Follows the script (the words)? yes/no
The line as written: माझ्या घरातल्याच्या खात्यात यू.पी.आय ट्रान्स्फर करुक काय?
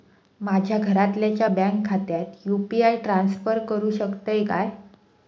no